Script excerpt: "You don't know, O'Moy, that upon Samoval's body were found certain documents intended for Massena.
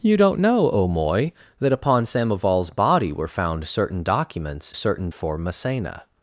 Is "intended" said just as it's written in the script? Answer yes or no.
no